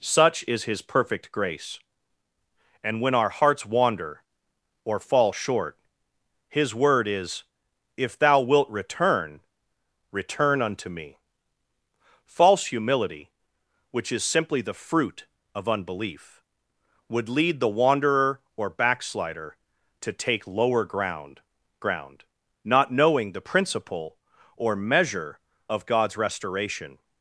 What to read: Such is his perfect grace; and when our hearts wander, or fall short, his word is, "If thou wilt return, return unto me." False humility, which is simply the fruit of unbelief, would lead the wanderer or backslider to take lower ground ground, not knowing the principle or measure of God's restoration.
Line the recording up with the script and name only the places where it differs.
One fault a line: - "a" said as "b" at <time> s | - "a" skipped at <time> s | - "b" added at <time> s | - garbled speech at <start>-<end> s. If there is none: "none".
none